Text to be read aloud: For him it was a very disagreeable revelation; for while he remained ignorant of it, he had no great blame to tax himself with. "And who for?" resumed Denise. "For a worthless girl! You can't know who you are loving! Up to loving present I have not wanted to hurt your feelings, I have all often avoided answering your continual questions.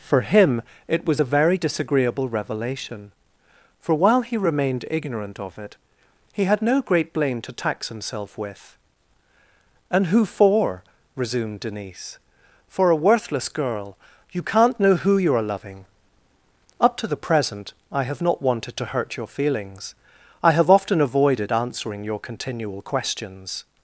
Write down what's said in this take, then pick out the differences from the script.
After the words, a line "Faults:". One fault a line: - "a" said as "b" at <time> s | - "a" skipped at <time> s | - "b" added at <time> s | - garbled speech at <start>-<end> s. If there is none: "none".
For him it was a very disagreeable revelation; for while he remained ignorant of it, he had no great blame to tax himself with. "And who for?" resumed Denise. "For a worthless girl! You can't know who you are loving! Up to the present I have not wanted to hurt your feelings, I have often avoided answering your continual questions.
Faults:
- "loving" said as "the" at 17.1 s
- "all" skipped at 20.7 s